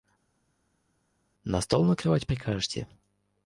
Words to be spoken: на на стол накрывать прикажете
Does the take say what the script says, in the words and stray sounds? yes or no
no